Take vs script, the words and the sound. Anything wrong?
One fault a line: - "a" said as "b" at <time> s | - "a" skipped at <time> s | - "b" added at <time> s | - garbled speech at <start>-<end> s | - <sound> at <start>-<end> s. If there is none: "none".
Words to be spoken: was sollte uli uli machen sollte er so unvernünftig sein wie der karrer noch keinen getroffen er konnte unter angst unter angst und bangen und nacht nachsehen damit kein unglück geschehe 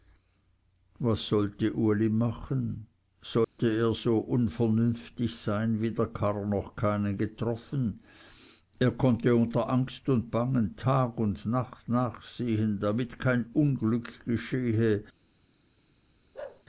- "uli" skipped at 2.1 s
- dropout at 3.4-3.6 s
- "unter angst" skipped at 10.1 s
- "tag" added at 10.8 s
- bark at 16.3-16.6 s